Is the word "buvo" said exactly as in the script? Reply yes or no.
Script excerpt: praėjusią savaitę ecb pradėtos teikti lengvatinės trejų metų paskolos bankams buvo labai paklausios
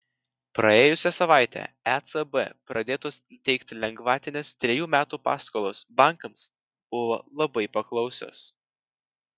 yes